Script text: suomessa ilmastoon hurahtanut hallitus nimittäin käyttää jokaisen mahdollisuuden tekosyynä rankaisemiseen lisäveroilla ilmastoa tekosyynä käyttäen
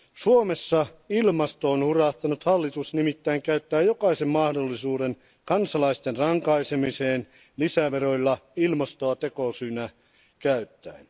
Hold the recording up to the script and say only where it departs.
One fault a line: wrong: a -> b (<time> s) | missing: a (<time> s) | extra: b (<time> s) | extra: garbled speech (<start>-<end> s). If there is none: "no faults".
wrong: tekosyynä -> kansalaisten (5.5 s)